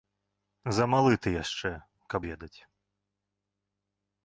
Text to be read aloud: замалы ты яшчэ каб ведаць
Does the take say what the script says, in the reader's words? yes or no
yes